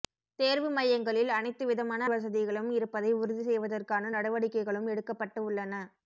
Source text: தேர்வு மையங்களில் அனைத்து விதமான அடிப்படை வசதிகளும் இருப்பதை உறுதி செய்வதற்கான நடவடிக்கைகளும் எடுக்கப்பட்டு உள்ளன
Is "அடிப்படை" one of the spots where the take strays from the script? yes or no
yes